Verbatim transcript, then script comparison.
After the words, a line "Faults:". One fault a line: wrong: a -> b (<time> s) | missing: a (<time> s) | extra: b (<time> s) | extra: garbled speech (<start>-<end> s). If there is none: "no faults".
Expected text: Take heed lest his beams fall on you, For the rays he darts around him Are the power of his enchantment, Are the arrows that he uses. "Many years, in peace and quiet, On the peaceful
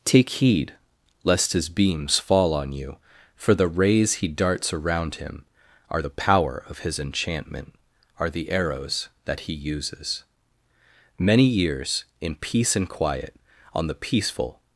Take heed lest his beams fall on you, For the rays he darts around him Are the power of his enchantment, Are the arrows that he uses. "Many years, in peace and quiet, On the peaceful
Faults:
no faults